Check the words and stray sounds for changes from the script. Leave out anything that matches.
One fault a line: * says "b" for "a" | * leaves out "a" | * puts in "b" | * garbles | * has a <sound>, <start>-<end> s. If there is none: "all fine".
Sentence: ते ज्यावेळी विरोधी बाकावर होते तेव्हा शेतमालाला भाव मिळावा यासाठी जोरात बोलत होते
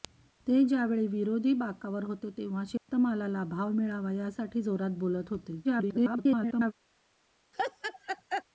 * has a dropout, 2.8-2.9 s
* garbles
* has a laugh, 7.5-8.4 s